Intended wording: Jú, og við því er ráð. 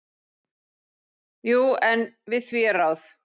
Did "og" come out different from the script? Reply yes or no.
yes